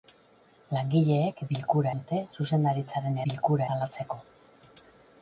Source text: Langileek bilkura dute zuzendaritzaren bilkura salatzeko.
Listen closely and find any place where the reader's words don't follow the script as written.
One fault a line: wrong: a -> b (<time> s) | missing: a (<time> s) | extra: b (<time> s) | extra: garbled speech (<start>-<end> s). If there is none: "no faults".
no faults